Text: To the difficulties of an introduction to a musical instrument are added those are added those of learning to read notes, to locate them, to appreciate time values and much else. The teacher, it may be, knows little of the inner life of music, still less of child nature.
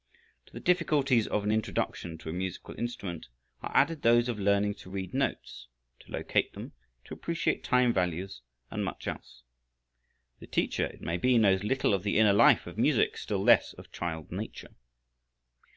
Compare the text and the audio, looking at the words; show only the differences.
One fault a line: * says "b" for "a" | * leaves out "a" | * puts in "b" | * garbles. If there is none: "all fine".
* leaves out "are added those"